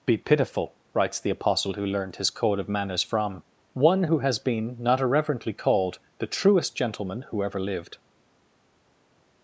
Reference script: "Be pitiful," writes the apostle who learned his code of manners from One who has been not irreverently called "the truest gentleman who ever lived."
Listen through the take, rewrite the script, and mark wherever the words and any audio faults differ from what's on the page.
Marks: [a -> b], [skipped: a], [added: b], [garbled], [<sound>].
"Be pitiful," writes the apostle who learned his code of manners from One who has been not irreverently called "the truest gentleman who ever lived."